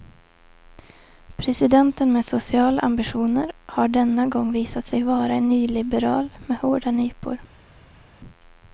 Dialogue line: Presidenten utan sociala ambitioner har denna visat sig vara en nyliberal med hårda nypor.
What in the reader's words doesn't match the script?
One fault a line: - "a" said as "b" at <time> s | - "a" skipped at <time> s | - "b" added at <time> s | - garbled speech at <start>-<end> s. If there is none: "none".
- "utan" said as "med" at 2.1 s
- "gång" added at 4.3 s